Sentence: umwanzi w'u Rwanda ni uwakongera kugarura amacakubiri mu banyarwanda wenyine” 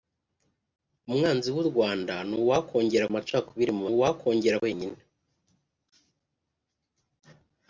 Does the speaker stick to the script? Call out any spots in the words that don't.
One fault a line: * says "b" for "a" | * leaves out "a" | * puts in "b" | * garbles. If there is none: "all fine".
* leaves out "kugarura"
* says "uwakongera" for "banyarwanda"